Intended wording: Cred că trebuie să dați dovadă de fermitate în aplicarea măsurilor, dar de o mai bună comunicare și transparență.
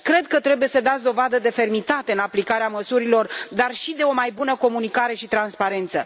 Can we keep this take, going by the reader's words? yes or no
no